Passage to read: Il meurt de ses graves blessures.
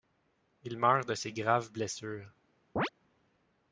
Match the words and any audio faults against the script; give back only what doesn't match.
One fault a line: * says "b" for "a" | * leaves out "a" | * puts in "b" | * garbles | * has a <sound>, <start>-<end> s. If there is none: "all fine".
* has a chirp, 2.8-2.9 s